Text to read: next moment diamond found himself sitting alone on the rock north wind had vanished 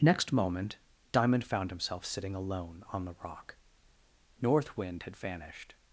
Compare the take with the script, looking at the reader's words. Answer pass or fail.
pass